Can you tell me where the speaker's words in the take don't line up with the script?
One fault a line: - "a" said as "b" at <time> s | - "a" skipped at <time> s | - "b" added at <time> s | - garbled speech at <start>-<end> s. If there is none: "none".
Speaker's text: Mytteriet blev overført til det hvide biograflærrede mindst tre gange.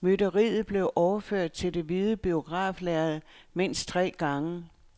none